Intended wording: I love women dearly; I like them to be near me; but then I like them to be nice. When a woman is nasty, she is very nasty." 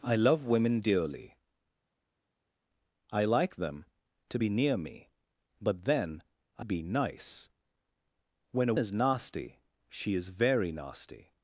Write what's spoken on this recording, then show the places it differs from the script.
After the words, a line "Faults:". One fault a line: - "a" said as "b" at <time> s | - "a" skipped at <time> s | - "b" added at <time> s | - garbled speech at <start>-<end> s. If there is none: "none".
I love women dearly; I like them to be near me; but then I be nice. When a is nasty, she is very nasty."
Faults:
- "like them to" skipped at 6.7 s
- "woman" skipped at 8.7 s